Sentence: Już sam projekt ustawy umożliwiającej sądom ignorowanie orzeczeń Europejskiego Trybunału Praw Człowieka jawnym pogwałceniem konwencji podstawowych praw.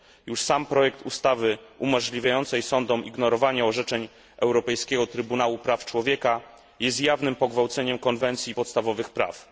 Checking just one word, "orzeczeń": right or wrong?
right